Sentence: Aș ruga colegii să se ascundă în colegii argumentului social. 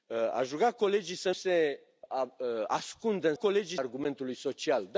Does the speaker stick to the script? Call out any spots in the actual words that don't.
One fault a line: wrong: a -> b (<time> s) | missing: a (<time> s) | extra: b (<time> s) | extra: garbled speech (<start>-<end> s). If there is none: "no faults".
no faults